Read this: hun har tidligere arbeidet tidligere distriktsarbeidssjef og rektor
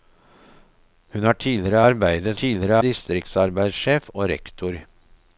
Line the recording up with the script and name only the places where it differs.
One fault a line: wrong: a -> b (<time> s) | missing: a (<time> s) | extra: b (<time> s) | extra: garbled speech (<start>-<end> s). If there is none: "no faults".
no faults